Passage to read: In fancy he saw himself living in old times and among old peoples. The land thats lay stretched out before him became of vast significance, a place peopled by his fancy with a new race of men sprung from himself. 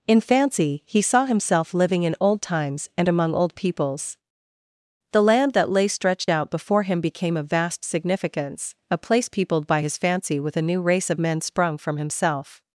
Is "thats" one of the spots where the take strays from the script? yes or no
yes